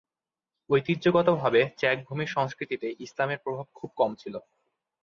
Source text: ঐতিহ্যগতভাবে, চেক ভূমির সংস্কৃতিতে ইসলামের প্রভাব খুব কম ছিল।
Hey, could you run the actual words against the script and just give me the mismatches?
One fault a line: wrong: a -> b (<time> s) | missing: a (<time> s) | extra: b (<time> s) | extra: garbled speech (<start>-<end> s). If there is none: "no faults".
no faults